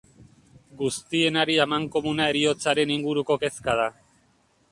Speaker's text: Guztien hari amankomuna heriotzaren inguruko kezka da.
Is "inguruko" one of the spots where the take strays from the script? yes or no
no